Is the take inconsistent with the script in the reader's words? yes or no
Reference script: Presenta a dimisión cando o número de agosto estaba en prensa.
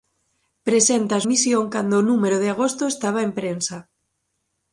no